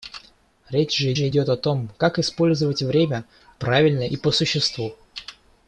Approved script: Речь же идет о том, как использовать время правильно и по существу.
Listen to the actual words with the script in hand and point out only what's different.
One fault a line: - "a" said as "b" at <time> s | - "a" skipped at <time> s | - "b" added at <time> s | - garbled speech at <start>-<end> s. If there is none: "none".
- "же" added at 1.1 s